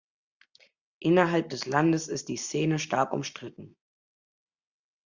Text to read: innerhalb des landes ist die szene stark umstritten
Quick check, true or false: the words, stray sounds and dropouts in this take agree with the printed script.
true